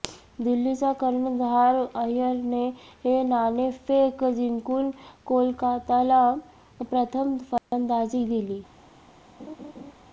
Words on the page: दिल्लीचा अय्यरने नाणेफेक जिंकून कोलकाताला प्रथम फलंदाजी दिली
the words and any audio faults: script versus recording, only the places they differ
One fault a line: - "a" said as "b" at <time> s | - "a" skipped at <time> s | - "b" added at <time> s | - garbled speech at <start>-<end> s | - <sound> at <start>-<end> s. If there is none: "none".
- "कर्णधार" added at 1.0 s
- dropout at 7.6-7.7 s
- laugh at 9.4-9.9 s